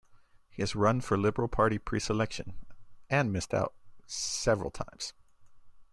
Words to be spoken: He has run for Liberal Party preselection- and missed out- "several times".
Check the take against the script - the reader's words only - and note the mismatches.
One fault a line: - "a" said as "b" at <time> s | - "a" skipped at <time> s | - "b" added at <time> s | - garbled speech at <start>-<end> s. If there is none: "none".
none